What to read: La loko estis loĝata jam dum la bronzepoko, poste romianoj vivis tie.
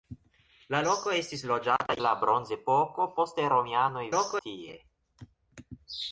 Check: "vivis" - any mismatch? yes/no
yes